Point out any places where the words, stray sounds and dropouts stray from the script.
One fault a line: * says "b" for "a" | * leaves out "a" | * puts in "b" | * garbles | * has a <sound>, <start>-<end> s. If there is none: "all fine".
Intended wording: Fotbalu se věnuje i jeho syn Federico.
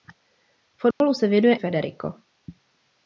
* has a dropout, 0.9-1.0 s
* leaves out "i jeho syn"